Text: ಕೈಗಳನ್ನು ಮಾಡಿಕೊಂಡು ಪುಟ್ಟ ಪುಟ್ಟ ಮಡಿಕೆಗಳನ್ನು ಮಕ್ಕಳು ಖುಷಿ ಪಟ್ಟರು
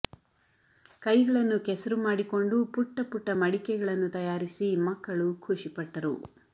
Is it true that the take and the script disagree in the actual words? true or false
true